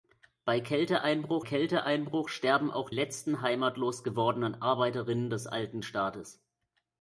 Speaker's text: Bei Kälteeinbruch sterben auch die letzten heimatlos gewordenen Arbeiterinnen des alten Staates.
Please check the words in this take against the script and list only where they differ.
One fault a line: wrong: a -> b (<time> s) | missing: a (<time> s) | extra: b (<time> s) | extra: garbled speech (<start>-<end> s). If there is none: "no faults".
extra: Kälteeinbruch (1.4 s)
missing: die (2.9 s)